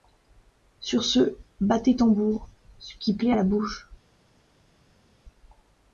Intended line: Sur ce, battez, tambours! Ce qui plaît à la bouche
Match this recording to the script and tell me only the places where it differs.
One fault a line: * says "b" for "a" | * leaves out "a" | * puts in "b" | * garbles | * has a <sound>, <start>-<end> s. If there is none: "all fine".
all fine